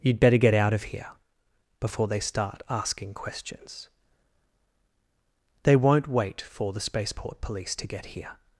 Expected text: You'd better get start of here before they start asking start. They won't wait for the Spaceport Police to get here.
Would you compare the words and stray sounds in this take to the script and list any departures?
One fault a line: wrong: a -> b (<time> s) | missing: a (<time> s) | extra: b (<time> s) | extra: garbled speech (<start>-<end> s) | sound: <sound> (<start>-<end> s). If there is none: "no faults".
wrong: start -> out (0.5 s)
wrong: start -> questions (3.1 s)